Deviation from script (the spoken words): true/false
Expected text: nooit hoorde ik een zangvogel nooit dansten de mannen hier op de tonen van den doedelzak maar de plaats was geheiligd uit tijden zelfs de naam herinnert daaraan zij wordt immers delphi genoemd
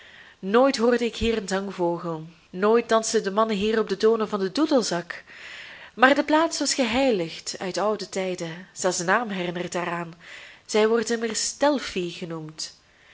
true